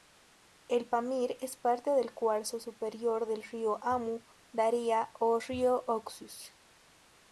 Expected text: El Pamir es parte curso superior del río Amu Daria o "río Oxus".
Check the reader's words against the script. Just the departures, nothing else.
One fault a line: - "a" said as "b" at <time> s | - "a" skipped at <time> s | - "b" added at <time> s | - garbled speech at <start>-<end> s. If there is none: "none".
- "del" added at 1.9 s